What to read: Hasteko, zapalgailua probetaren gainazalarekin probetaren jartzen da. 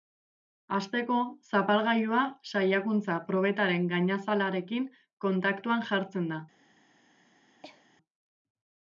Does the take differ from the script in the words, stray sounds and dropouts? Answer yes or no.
yes